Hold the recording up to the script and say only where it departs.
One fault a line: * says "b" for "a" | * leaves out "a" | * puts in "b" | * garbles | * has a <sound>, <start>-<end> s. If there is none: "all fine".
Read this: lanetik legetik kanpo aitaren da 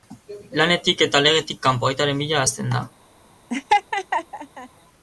* puts in "eta"
* puts in "bila hasten"
* has a laugh, 3.5-4.7 s